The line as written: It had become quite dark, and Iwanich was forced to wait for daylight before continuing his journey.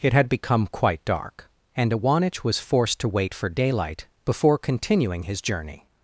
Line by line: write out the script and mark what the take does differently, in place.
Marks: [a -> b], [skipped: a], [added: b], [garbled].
It had become quite dark, and Iwanich was forced to wait for daylight before continuing his journey.